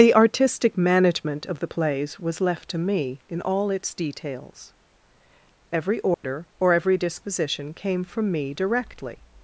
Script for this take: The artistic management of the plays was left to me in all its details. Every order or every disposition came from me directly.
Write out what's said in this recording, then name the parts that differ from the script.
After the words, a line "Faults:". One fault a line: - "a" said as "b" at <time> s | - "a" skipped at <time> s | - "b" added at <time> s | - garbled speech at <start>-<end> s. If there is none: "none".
The artistic management of the plays was left to me in all its details. Every order or every disposition came from me directly.
Faults:
none